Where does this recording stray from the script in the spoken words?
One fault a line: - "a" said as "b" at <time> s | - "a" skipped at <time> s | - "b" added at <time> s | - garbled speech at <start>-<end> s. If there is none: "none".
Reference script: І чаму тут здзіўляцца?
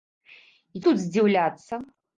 - "чаму" skipped at 0.8 s